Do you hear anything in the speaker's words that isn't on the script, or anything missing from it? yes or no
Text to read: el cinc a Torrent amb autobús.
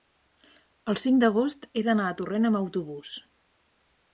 yes